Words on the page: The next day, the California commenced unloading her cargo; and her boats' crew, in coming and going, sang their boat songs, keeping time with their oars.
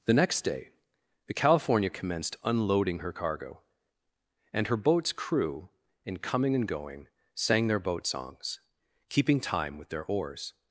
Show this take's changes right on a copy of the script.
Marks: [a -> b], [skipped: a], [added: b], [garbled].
The next day, the California commenced unloading her cargo; and her boats' crew, in coming and going, sang their boat songs, keeping time with their oars.